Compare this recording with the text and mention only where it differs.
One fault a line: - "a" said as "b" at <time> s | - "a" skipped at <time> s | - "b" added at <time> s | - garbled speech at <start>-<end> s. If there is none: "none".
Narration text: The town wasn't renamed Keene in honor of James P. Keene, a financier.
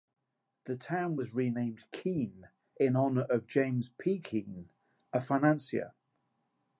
- "wasn't" said as "was" at 1.1 s